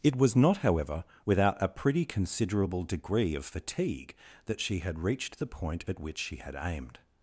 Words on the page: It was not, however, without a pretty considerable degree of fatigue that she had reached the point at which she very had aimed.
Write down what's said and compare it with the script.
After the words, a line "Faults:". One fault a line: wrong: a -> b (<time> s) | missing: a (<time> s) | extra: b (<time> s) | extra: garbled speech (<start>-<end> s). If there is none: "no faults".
It was not, however, without a pretty considerable degree of fatigue that she had reached the point at which she had aimed.
Faults:
missing: very (6.4 s)